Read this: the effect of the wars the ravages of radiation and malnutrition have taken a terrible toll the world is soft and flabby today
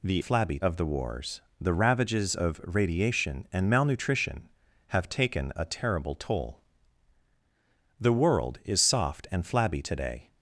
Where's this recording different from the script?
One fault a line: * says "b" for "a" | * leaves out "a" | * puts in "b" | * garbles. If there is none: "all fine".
* says "flabby" for "effect"